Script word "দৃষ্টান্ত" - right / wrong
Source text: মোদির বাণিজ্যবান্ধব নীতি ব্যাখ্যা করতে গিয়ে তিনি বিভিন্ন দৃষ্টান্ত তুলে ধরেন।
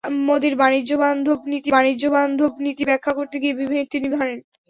wrong